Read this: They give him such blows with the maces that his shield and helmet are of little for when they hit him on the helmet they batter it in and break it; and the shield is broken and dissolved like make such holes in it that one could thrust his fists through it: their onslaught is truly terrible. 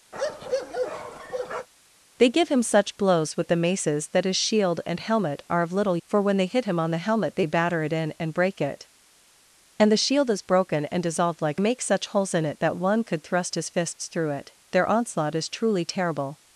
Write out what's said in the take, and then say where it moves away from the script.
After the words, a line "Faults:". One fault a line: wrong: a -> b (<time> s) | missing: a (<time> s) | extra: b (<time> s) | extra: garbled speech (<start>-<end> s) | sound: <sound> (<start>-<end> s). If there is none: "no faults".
They give him such blows with the maces that his shield and helmet are of little for when they hit him on the helmet they batter it in and break it; and the shield is broken and dissolved like make such holes in it that one could thrust his fists through it: their onslaught is truly terrible.
Faults:
sound: bark (0.1-1.7 s)